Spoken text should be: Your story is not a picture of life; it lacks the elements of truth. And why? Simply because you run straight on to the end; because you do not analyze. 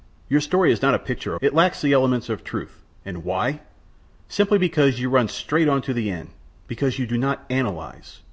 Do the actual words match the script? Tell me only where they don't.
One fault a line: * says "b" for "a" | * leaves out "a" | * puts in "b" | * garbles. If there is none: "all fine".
* leaves out "of life"